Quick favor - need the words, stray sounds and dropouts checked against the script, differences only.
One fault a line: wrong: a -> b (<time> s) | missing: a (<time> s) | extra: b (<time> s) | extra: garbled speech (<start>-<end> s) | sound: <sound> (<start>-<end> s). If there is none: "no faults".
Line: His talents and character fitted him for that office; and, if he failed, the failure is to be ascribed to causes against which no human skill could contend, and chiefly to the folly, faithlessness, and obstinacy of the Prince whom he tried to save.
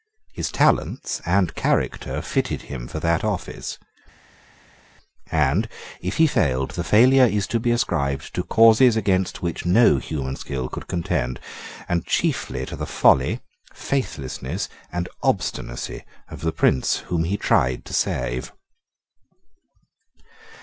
no faults